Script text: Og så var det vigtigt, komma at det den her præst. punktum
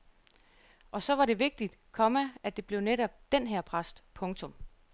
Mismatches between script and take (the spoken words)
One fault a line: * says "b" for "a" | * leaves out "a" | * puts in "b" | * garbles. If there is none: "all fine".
* puts in "blev netop"